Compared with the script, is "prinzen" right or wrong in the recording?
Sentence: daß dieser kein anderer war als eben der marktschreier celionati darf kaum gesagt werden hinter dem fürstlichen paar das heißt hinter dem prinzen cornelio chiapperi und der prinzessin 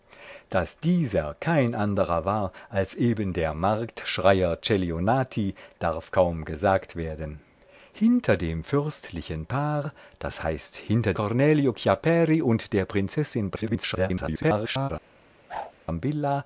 wrong